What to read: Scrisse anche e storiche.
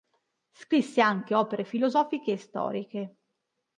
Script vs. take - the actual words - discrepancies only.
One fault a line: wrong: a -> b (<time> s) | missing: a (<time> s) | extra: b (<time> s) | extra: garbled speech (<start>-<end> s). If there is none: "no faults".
extra: opere filosofiche (1.4 s)